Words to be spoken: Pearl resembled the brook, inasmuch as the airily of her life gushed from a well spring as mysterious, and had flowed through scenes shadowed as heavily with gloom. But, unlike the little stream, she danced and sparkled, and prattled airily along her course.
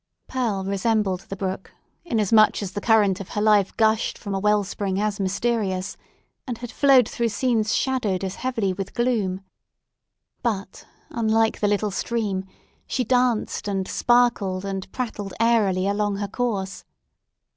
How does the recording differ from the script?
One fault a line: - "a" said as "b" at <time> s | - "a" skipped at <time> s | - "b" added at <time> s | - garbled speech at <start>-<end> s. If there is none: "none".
- "airily" said as "current" at 2.8 s